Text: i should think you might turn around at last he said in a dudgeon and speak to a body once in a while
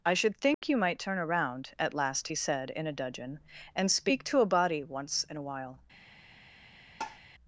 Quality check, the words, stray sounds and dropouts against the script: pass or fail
fail